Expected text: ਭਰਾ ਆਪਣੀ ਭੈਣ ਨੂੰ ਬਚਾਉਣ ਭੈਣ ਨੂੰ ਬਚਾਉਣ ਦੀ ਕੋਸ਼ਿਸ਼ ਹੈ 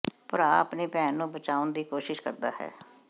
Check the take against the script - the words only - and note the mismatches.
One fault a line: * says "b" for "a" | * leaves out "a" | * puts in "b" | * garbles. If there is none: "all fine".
* leaves out "ਭੈਣ ਨੂੰ ਬਚਾਉਣ"
* puts in "ਕਰਦਾ"